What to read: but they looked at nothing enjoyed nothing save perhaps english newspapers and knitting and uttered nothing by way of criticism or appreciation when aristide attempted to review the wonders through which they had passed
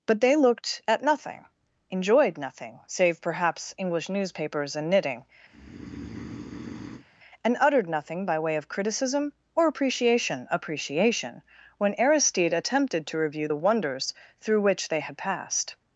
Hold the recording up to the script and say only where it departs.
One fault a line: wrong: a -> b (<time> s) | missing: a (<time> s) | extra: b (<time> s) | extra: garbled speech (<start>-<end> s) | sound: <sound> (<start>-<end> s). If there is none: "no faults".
sound: breath (5.5-7.0 s)
extra: appreciation (10.5 s)